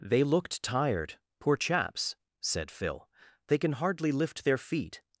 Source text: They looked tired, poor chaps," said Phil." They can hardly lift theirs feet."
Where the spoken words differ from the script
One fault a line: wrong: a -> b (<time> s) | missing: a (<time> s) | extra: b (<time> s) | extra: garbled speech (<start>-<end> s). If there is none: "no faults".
wrong: theirs -> their (4.5 s)